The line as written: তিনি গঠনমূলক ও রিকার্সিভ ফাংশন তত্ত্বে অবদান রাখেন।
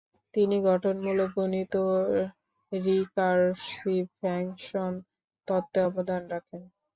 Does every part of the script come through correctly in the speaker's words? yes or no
no